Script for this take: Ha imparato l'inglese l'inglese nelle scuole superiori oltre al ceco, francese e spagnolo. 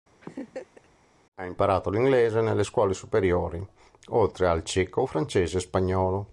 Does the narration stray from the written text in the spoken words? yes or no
yes